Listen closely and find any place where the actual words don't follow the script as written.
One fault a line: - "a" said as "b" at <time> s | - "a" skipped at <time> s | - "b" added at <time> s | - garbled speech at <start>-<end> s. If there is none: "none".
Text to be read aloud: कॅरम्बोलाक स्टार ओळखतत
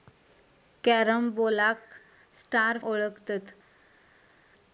none